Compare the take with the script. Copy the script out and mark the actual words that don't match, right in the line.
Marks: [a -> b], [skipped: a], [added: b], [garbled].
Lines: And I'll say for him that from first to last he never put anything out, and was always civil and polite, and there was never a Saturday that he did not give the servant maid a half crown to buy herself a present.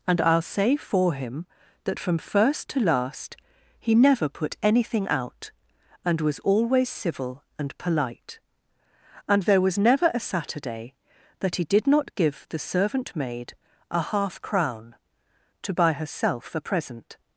And I'll say for him that from first to last he never put anything out, and was always civil and polite, and there was never a Saturday that he did not give the servant maid a half crown to buy herself a present.